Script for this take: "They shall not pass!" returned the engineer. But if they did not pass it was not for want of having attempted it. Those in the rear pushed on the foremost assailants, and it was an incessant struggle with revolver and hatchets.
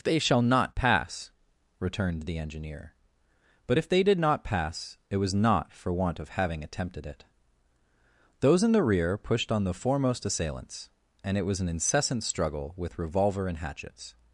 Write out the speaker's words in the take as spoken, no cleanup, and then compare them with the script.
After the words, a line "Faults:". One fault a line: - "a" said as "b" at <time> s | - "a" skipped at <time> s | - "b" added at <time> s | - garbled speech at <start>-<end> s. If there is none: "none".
"They shall not pass!" returned the engineer. But if they did not pass it was not for want of having attempted it. Those in the rear pushed on the foremost assailants, and it was an incessant struggle with revolver and hatchets.
Faults:
none